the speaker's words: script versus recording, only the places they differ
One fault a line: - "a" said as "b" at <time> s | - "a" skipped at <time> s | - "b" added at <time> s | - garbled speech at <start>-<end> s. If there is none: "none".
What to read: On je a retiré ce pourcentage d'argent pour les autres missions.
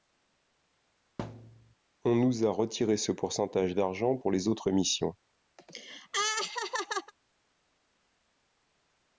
- "je" said as "nous" at 2.1 s